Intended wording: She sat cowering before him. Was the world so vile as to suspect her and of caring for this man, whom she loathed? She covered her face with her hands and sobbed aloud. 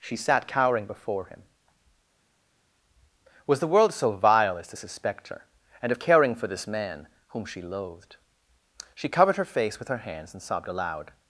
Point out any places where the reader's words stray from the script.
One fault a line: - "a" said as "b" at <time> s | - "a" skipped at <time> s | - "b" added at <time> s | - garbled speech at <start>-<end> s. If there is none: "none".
none